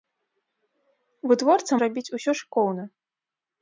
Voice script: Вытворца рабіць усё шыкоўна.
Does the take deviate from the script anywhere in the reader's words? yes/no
no